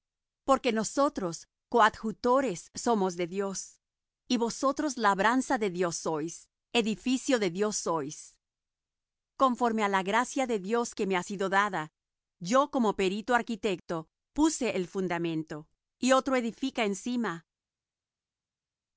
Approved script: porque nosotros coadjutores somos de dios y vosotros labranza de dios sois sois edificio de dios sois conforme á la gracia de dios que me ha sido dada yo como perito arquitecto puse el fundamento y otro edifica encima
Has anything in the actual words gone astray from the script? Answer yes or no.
yes